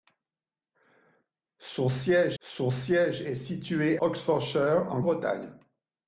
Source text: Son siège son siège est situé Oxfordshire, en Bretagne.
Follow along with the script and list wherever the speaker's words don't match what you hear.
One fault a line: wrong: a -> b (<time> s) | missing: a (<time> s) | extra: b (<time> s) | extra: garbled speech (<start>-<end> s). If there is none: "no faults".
no faults